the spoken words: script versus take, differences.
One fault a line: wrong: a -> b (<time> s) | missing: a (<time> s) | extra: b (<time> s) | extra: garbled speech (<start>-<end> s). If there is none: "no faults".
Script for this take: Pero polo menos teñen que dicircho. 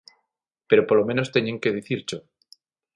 no faults